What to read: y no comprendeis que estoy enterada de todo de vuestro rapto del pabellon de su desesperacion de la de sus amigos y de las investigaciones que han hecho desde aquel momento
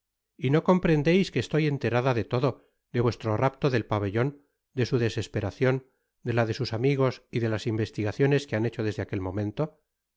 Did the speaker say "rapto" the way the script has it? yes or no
yes